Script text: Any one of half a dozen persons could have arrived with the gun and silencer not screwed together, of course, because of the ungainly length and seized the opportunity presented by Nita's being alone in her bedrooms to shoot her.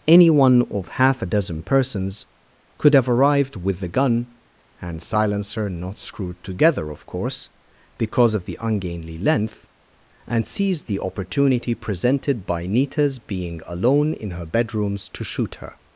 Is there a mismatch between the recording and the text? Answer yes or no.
no